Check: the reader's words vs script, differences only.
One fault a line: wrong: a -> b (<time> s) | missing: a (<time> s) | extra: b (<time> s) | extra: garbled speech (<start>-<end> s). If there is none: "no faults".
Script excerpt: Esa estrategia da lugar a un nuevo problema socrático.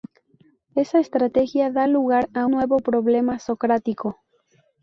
missing: un (2.5 s)